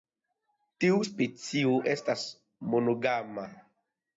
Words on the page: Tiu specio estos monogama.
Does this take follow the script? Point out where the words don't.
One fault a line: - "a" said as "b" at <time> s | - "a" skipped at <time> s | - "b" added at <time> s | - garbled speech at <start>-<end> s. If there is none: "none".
- "estos" said as "estas" at 1.9 s